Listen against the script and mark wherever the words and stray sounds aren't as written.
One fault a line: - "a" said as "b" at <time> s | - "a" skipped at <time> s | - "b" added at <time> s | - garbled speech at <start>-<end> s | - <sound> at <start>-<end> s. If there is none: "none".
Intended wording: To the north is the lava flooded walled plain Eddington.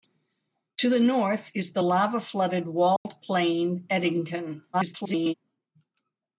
- dropout at 3.0-3.1 s
- garbled speech at 4.7-5.3 s